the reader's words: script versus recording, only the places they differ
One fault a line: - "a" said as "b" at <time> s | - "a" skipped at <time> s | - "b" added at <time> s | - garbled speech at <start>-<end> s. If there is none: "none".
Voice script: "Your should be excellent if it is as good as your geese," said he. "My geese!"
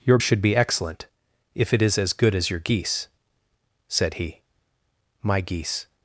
none